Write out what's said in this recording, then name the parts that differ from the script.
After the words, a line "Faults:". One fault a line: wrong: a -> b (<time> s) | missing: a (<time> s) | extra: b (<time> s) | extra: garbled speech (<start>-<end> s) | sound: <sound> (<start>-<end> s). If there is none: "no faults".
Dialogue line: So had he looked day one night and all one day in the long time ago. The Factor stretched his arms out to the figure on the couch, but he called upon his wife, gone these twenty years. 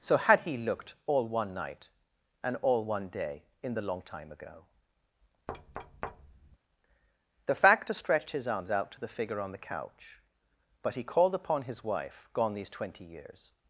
So had he looked all one night and all one day in the long time ago. The Factor stretched his arms out to the figure on the couch, but he called upon his wife, gone these twenty years.
Faults:
wrong: day -> all (1.1 s)
sound: thud (5.5-6.6 s)